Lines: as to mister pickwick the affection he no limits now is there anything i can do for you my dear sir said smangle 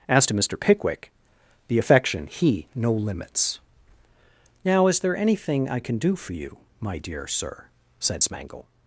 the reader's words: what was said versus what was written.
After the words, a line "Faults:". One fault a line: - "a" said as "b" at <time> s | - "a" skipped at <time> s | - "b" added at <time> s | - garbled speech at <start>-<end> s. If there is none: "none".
as to mister pickwick the affection he no limits now is there anything i can do for you my dear sir said smangle
Faults:
none